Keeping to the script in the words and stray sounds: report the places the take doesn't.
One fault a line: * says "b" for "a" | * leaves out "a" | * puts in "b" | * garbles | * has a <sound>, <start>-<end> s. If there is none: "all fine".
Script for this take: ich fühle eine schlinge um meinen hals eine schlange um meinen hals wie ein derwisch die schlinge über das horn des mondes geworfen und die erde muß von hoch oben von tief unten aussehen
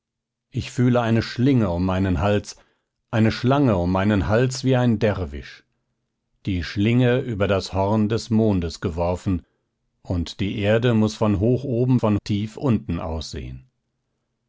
all fine